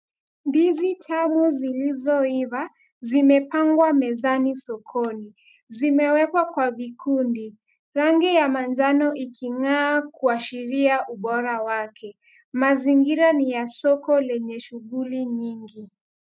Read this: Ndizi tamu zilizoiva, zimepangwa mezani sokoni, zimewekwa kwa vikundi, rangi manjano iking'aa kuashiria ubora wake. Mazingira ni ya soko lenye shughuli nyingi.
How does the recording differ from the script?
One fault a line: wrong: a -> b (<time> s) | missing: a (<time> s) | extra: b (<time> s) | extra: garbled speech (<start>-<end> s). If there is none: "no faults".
extra: ya (8.3 s)